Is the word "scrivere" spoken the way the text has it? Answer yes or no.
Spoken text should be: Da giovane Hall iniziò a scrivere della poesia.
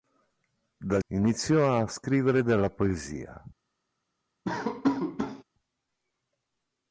yes